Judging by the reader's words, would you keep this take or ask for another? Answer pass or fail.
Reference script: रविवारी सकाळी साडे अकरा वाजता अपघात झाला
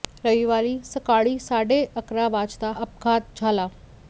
pass